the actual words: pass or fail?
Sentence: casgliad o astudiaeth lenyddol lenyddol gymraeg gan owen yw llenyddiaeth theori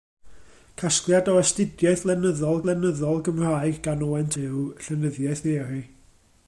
pass